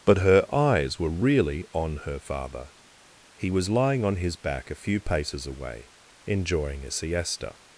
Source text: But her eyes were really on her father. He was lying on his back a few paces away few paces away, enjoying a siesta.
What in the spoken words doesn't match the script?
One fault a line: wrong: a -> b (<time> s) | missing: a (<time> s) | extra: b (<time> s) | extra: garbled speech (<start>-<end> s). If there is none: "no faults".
missing: few paces away (5.9 s)